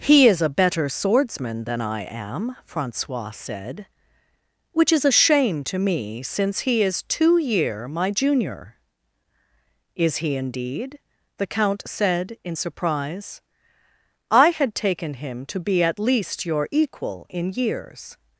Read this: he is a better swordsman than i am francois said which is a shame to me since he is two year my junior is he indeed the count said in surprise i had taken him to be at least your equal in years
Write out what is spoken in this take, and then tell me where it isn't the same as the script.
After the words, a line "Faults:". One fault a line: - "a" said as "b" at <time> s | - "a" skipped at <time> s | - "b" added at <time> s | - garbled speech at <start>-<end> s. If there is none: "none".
he is a better swordsman than i am francois said which is a shame to me since he is two year my junior is he indeed the count said in surprise i had taken him to be at least your equal in years
Faults:
none